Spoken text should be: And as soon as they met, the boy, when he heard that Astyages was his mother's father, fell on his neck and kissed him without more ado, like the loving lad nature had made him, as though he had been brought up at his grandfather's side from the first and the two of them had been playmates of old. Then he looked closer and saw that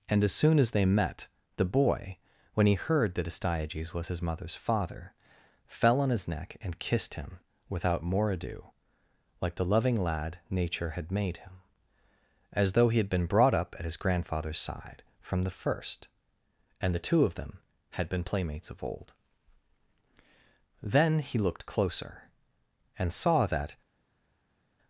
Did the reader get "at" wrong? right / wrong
right